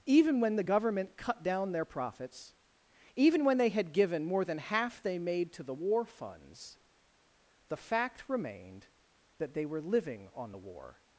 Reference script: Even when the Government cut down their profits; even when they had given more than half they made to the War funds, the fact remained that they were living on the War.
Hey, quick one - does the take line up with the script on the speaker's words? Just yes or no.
yes